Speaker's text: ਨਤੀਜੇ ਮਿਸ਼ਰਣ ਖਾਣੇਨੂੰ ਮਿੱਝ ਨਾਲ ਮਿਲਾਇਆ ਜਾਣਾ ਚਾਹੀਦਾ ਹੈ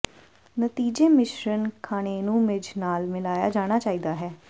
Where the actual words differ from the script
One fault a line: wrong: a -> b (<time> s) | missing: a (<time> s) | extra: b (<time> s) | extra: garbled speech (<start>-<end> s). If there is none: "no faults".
no faults